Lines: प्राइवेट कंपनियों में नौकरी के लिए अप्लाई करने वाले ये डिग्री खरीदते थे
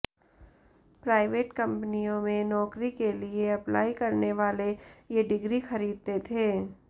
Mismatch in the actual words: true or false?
false